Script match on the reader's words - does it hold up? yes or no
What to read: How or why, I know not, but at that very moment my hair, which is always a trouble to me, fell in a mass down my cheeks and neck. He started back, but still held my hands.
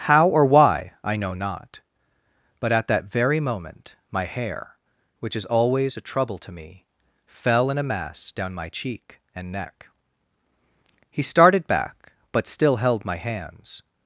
no